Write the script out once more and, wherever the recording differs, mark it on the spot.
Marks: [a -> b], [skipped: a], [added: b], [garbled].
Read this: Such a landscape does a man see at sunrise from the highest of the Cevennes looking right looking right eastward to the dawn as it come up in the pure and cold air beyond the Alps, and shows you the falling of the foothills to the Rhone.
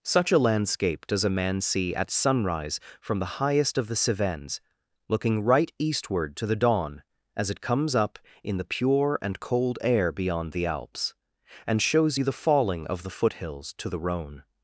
Such a landscape does a man see at sunrise from the highest of the Cevennes looking right [skipped: looking right] eastward to the dawn as it [come -> comes] up in the pure and cold air beyond the Alps, and shows you the falling of the foothills to the Rhone.